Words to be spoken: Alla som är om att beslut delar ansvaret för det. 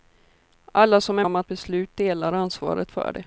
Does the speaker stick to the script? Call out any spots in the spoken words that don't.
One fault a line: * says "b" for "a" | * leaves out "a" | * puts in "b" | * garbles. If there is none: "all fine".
all fine